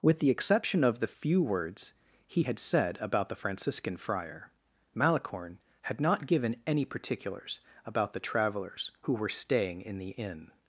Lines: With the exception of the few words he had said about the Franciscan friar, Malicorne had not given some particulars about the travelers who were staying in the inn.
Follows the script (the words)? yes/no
no